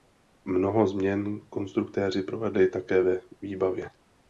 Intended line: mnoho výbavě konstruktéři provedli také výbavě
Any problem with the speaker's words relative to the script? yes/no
yes